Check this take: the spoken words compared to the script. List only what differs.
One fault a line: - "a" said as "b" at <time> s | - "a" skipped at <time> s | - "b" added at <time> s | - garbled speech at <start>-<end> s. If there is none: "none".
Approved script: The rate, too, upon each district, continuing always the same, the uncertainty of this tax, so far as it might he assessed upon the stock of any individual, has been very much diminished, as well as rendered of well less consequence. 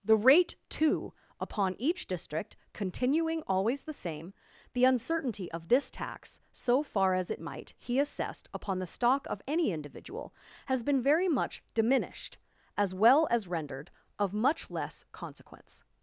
- "well" said as "much" at 14.3 s